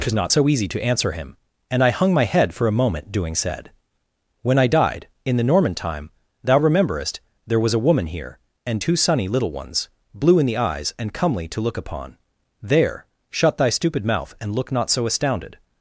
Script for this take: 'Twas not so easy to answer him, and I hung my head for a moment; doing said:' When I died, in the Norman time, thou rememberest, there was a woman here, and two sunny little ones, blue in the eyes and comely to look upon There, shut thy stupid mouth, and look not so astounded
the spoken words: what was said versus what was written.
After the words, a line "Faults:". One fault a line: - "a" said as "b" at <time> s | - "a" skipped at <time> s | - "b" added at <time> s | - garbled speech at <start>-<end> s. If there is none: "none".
'Twas not so easy to answer him, and I hung my head for a moment; doing said:' When I died, in the Norman time, thou rememberest, there was a woman here, and two sunny little ones, blue in the eyes and comely to look upon There, shut thy stupid mouth, and look not so astounded
Faults:
none